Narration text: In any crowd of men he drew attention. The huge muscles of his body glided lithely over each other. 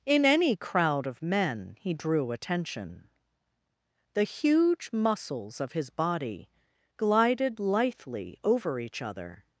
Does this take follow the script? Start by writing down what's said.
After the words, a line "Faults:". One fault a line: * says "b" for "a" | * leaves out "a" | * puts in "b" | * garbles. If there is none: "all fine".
In any crowd of men he drew attention. The huge muscles of his body glided lithely over each other.
Faults:
all fine